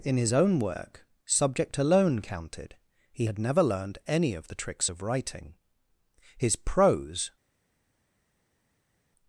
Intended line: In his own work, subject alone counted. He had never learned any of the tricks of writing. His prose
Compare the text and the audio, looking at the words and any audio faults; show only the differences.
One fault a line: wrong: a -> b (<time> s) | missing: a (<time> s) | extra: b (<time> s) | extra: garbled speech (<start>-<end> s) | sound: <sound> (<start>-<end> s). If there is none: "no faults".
no faults